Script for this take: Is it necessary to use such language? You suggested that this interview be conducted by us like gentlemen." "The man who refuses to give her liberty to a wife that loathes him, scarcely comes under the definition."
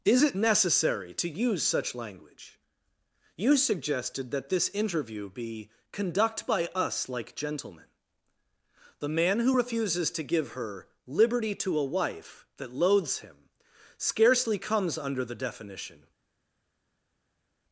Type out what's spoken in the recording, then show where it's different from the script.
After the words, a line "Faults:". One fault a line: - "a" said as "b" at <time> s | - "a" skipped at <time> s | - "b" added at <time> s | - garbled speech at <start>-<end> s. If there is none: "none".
Is it necessary to use such language? You suggested that this interview be conduct by us like gentlemen." "The man who refuses to give her liberty to a wife that loathes him, scarcely comes under the definition."
Faults:
- "conducted" said as "conduct" at 5.9 s